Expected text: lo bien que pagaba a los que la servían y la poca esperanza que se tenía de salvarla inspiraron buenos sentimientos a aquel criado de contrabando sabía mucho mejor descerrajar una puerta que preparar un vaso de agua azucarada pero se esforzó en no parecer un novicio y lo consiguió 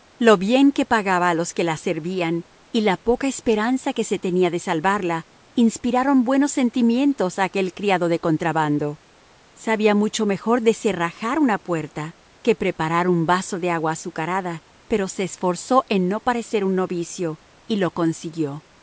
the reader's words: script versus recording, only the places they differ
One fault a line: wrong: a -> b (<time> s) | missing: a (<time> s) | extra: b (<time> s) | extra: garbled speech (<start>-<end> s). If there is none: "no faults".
no faults